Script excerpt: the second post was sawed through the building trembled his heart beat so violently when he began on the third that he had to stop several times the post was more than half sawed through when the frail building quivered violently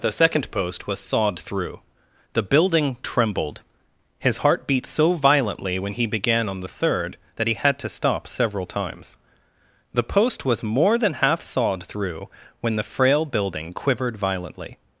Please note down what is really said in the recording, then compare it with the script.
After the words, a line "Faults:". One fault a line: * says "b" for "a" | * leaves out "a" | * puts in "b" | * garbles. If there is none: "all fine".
the second post was sawed through the building trembled his heart beat so violently when he began on the third that he had to stop several times the post was more than half sawed through when the frail building quivered violently
Faults:
all fine